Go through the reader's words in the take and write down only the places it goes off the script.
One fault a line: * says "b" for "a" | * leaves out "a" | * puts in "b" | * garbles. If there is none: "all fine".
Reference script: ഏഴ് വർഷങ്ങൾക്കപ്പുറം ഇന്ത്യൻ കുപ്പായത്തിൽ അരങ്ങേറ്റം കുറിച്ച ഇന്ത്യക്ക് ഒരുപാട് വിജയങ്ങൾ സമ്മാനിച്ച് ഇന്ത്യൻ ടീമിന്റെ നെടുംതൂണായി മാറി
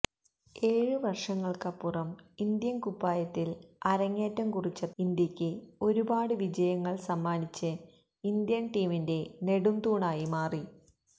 all fine